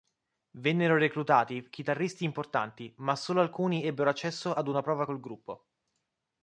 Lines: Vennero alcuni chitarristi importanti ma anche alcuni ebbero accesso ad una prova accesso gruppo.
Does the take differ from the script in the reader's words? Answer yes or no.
yes